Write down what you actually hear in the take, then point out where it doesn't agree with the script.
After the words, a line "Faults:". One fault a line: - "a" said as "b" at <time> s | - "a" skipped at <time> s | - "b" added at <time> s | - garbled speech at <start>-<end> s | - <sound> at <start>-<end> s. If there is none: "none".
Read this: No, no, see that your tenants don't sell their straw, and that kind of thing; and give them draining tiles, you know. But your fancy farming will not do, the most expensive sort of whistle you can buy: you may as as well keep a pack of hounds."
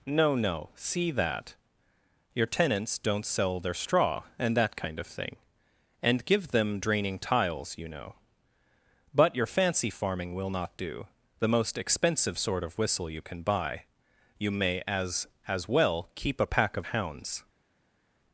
No, no, see that your tenants don't sell their straw, and that kind of thing; and give them draining tiles, you know. But your fancy farming will not do, the most expensive sort of whistle you can buy: you may as as well keep a pack of hounds."
Faults:
none